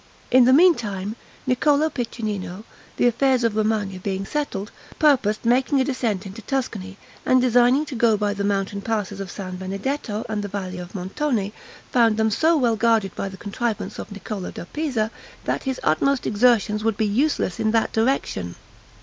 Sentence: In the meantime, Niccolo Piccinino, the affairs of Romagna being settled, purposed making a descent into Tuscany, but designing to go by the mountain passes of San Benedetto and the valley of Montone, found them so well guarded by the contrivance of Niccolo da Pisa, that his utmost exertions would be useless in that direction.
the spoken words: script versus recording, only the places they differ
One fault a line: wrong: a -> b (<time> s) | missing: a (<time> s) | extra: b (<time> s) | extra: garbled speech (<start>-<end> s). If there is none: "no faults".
wrong: but -> and (7.2 s)